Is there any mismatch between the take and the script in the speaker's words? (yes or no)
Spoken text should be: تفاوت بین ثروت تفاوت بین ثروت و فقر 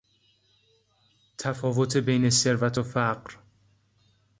yes